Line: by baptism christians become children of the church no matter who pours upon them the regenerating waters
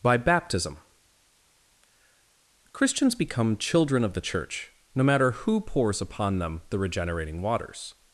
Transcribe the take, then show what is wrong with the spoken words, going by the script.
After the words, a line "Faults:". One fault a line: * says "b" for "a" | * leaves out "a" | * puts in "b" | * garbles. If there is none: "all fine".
by baptism christians become children of the church no matter who pours upon them the regenerating waters
Faults:
all fine